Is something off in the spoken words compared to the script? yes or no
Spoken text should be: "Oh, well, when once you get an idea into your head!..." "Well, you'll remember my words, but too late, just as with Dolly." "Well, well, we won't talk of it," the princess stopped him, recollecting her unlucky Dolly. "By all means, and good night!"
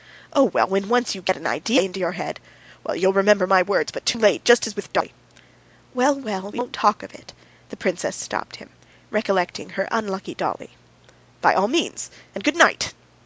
no